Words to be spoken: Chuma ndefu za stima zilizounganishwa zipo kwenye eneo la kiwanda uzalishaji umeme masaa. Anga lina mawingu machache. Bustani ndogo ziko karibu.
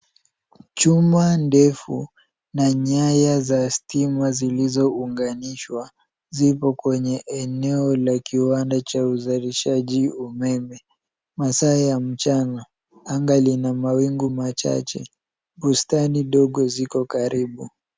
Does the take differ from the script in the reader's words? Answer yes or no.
yes